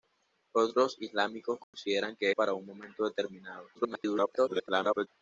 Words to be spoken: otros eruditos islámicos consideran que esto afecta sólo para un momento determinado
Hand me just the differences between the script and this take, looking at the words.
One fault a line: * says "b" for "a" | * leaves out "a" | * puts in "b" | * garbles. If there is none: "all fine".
* leaves out "eruditos"
* leaves out "esto afecta sólo"
* garbles